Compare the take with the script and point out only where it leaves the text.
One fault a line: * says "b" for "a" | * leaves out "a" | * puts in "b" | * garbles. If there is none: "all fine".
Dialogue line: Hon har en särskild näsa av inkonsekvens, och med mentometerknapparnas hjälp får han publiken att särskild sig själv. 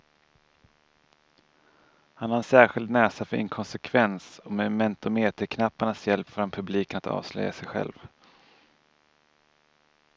* says "Han" for "Hon"
* says "för" for "av"
* says "avslöja" for "särskild"